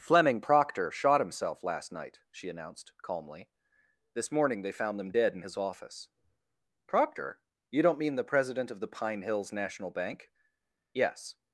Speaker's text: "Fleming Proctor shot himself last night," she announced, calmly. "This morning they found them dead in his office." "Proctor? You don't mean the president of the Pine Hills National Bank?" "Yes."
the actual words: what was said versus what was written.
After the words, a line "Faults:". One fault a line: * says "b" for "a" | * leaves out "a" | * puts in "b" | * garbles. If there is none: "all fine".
"Fleming Proctor shot himself last night," she announced, calmly. "This morning they found them dead in his office." "Proctor? You don't mean the president of the Pine Hills National Bank?" "Yes."
Faults:
all fine